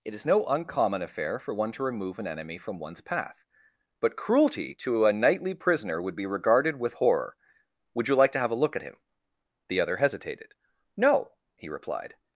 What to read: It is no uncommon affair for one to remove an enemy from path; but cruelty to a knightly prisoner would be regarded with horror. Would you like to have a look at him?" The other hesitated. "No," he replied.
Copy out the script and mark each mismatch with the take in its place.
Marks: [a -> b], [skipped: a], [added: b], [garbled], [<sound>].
It is no uncommon affair for one to remove an enemy from [added: one's] path; but cruelty to a knightly prisoner would be regarded with horror. Would you like to have a look at him?" The other hesitated. "No," he replied.